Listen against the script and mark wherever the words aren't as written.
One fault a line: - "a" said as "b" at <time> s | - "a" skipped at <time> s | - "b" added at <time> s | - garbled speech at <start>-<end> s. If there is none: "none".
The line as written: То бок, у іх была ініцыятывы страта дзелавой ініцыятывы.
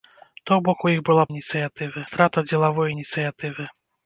none